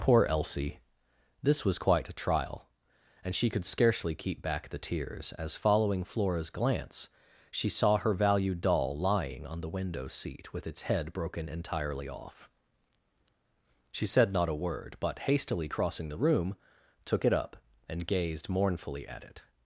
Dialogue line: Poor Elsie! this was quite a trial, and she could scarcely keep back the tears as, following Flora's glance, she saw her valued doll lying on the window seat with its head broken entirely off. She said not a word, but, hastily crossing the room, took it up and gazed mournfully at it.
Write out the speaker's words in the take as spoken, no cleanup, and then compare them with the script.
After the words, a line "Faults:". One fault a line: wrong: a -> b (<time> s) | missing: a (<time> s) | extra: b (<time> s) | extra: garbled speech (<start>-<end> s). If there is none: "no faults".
Poor Elsie! this was quite a trial, and she could scarcely keep back the tears as, following Flora's glance, she saw her valued doll lying on the window seat with its head broken entirely off. She said not a word, but, hastily crossing the room, took it up and gazed mournfully at it.
Faults:
no faults